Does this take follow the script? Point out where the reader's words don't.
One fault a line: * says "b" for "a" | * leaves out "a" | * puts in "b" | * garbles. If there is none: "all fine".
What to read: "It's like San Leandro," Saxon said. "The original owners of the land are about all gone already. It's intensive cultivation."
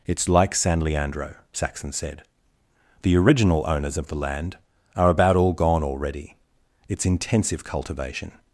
all fine